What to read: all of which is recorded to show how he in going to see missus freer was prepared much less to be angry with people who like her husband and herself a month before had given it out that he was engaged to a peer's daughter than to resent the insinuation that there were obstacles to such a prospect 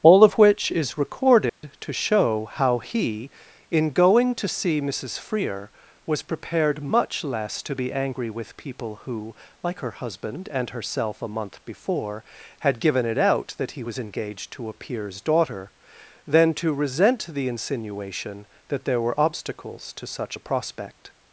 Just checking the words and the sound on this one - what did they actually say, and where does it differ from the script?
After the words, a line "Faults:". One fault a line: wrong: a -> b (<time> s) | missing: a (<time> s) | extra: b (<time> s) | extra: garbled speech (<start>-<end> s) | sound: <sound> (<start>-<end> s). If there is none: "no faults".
all of which is recorded to show how he in going to see missus freer was prepared much less to be angry with people who like her husband and herself a month before had given it out that he was engaged to a peer's daughter than to resent the insinuation that there were obstacles to such a prospect
Faults:
sound: dropout (1.5-1.6 s)